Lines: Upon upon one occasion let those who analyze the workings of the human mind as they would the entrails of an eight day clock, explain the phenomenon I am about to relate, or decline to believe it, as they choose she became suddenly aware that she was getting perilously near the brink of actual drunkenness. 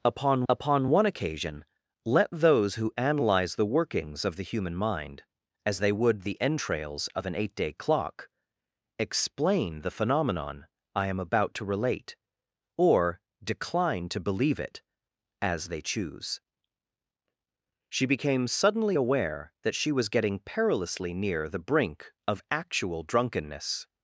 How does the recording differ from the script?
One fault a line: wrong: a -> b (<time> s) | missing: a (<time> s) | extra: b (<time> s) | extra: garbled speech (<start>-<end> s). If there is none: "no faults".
no faults